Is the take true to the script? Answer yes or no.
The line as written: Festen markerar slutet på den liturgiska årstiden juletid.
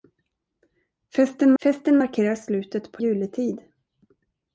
no